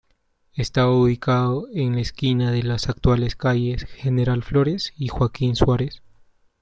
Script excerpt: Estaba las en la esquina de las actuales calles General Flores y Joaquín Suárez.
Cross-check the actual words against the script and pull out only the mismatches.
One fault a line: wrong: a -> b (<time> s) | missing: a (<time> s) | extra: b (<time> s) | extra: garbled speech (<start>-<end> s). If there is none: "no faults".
wrong: las -> ubicado (0.9 s)